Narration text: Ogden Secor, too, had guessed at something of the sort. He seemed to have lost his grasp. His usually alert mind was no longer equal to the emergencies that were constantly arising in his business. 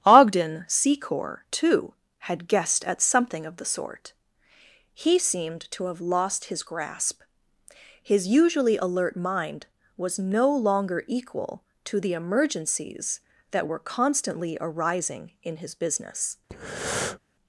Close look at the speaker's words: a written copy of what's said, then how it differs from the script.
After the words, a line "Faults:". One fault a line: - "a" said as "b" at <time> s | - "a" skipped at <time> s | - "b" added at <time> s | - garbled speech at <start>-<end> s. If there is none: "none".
Ogden Secor, too, had guessed at something of the sort. He seemed to have lost his grasp. His usually alert mind was no longer equal to the emergencies that were constantly arising in his business.
Faults:
none